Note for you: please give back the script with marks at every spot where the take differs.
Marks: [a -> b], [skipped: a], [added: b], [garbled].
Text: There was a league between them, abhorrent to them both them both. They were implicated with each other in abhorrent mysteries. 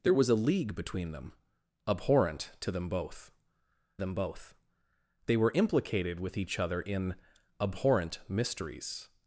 There was a league between them, abhorrent to them both them both. They were implicated with each other in abhorrent mysteries.